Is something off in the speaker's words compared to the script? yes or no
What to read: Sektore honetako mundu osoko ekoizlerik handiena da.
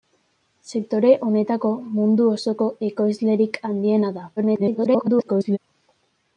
yes